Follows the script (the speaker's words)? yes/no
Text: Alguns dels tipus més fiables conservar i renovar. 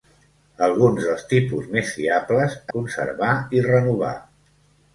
yes